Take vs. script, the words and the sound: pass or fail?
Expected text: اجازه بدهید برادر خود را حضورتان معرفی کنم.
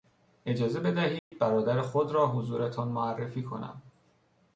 fail